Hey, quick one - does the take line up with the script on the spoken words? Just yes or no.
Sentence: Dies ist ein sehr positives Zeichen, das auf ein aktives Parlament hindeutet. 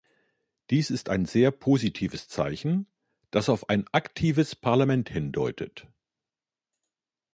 yes